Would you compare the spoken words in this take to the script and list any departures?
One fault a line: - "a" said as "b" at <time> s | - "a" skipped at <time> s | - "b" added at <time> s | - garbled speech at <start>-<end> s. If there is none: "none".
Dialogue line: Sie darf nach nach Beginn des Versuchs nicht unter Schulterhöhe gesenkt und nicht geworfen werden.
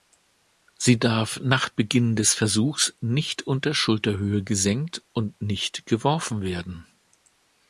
- "nach" skipped at 1.7 s